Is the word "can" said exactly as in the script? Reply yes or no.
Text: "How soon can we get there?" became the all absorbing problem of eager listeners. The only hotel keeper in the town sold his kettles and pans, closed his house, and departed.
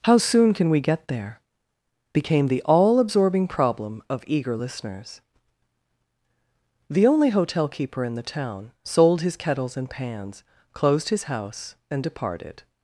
yes